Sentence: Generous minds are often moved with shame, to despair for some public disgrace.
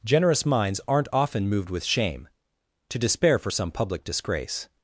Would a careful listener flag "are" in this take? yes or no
yes